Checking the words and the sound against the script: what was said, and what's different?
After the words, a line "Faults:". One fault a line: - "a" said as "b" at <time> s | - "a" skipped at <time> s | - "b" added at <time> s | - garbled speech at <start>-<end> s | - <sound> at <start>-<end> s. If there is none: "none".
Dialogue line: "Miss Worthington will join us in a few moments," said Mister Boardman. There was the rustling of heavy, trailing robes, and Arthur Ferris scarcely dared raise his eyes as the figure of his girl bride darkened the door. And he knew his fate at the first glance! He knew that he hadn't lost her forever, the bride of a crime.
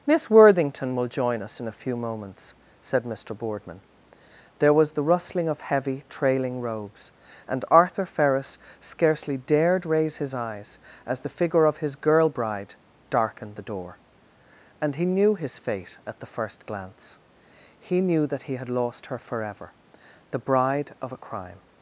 "Miss Worthington will join us in a few moments," said Mister Boardman. There was the rustling of heavy, trailing robes, and Arthur Ferris scarcely dared raise his eyes as the figure of his girl bride darkened the door. And he knew his fate at the first glance! He knew that he had lost her forever, the bride of a crime.
Faults:
- "hadn't" said as "had" at 18.6 s